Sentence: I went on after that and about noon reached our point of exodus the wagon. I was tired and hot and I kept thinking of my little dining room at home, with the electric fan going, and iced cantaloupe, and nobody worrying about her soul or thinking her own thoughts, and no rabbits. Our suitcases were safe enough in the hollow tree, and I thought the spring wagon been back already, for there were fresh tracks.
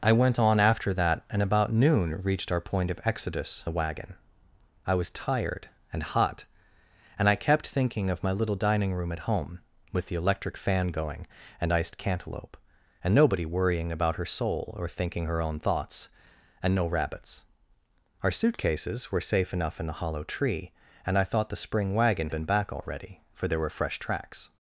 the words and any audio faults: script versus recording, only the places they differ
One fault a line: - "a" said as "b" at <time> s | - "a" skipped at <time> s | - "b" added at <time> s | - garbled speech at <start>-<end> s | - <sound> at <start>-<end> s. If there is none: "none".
none